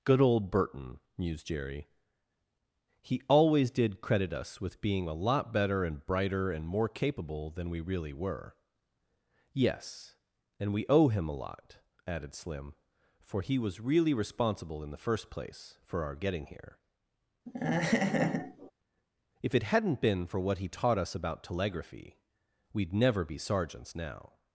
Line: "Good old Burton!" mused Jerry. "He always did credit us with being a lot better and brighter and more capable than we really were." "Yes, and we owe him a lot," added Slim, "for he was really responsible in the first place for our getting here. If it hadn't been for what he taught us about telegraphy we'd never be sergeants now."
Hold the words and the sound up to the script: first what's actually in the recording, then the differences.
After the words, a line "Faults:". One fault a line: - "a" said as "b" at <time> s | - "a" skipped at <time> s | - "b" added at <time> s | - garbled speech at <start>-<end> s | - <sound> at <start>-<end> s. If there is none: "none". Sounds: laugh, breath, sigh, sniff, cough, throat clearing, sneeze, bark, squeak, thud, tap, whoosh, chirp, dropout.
"Good old Burton!" mused Jerry. "He always did credit us with being a lot better and brighter and more capable than we really were." "Yes, and we owe him a lot," added Slim, "for he was really responsible in the first place for our getting here. If it hadn't been for what he taught us about telegraphy we'd never be sergeants now."
Faults:
- laugh at 17.5-18.7 s